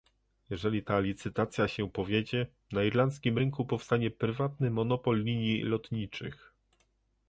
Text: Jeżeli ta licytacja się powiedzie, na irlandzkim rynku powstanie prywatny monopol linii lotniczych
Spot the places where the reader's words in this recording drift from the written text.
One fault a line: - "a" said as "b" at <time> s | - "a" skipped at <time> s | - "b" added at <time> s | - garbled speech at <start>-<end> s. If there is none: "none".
none